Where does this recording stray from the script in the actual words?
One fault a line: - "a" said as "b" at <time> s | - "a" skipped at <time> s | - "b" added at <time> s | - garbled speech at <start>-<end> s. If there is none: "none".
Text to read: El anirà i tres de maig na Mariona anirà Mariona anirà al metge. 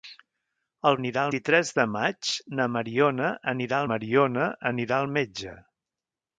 none